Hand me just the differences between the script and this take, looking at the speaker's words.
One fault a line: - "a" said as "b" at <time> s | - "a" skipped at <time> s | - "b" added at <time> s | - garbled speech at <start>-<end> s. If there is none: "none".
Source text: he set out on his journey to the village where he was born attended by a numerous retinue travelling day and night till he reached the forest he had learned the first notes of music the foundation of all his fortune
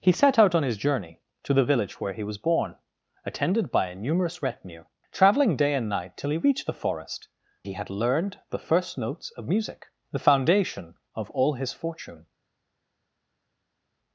none